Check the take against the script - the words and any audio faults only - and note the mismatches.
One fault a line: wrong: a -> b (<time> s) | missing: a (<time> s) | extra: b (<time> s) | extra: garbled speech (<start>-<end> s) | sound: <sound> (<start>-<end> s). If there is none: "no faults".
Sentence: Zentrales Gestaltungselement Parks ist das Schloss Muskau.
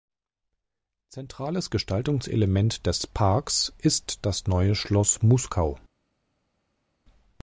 extra: des (2.9 s)
extra: Neue (4.5 s)